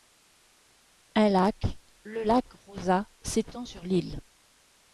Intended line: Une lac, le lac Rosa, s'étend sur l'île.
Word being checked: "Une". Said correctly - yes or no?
no